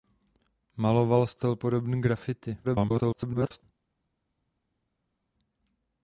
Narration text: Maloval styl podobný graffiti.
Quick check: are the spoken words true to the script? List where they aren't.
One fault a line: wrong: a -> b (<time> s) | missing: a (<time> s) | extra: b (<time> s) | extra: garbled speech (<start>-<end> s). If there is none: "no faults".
extra: garbled speech (2.6-3.6 s)